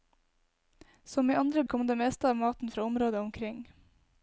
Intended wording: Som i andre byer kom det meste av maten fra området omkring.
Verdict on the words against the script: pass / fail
fail